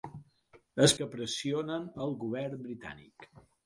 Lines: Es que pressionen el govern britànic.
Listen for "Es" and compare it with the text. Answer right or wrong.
right